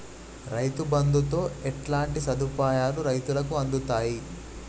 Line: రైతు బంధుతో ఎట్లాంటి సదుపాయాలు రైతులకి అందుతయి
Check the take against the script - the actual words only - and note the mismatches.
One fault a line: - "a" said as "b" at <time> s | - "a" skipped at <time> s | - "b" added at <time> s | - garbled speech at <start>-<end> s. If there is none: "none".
none